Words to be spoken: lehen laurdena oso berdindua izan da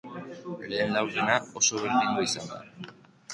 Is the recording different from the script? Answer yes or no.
no